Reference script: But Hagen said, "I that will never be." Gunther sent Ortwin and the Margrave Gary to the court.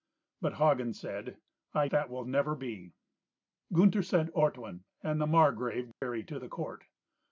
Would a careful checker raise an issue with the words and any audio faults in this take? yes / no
yes